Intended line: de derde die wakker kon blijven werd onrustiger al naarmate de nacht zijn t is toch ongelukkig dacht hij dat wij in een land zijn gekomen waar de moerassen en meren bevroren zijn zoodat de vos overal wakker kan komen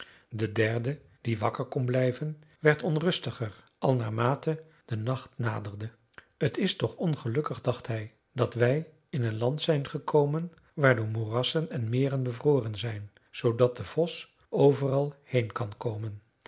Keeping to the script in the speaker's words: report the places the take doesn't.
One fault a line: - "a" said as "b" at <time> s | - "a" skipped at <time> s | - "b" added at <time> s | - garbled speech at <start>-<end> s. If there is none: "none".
- "zijn" said as "naderde" at 5.3 s
- "wakker" said as "heen" at 15.2 s